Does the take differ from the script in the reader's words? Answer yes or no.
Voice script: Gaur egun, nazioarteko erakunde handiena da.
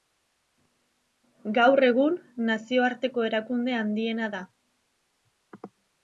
no